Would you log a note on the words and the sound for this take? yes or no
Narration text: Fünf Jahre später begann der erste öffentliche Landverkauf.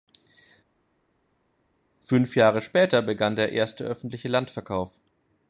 no